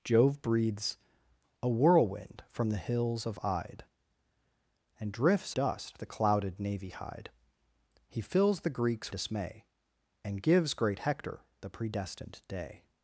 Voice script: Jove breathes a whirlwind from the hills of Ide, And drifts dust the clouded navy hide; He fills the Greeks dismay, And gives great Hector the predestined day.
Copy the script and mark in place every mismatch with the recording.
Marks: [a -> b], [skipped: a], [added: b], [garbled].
Jove breathes a whirlwind from the hills of Ide, And drifts dust the clouded navy hide; He fills the Greeks dismay, And gives great Hector the predestined day.